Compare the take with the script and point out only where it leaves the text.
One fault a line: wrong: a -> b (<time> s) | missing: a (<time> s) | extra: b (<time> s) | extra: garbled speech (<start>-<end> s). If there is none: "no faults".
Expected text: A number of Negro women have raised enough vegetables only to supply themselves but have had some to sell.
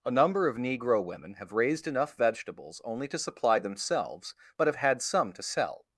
no faults